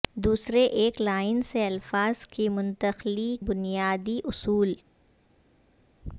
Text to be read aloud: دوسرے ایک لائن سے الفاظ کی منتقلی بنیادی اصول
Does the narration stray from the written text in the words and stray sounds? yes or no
no